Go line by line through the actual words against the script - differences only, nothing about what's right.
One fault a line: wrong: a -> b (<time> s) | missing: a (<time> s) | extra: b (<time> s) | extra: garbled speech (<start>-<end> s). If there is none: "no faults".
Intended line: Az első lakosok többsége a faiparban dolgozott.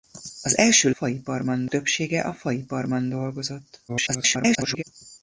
wrong: lakosok -> faiparban (0.9 s)
extra: garbled speech (3.9-4.8 s)